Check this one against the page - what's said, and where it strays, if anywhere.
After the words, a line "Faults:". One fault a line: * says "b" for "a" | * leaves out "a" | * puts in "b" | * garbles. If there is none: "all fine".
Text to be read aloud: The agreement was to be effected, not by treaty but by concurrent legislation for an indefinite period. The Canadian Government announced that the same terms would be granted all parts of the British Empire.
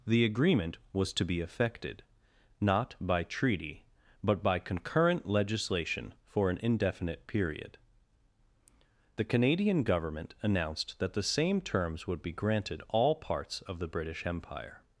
The agreement was to be effected, not by treaty but by concurrent legislation for an indefinite period. The Canadian Government announced that the same terms would be granted all parts of the British Empire.
Faults:
all fine